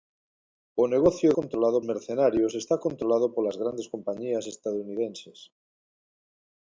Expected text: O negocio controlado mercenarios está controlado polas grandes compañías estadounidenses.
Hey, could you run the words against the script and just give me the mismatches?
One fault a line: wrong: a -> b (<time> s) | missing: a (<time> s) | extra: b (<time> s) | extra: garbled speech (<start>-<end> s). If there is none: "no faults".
no faults